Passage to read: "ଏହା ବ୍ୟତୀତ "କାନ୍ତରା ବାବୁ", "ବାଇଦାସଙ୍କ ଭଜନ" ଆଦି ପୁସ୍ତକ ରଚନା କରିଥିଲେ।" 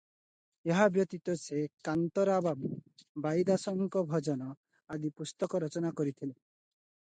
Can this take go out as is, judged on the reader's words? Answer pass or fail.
fail